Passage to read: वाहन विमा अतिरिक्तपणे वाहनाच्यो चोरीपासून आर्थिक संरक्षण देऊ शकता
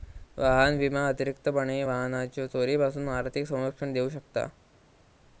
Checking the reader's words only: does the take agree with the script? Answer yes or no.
yes